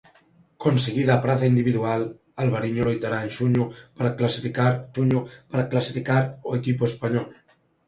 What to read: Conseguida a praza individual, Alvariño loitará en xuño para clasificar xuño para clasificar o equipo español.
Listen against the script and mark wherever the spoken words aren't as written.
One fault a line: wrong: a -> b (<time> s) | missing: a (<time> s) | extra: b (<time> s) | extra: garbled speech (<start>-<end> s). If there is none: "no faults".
no faults